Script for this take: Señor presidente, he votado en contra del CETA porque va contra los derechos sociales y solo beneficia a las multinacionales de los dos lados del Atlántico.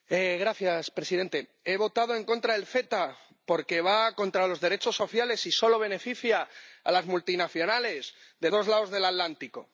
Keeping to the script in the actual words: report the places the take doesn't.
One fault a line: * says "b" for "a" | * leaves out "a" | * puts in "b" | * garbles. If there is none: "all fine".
* leaves out "los"